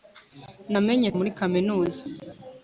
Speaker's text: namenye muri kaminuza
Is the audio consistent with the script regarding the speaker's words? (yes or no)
yes